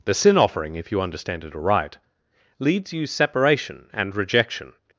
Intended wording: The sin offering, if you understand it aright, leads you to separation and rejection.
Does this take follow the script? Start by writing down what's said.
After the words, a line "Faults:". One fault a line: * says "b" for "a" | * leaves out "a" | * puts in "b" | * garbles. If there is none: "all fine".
The sin offering, if you understand it aright, leads you separation and rejection.
Faults:
* leaves out "to"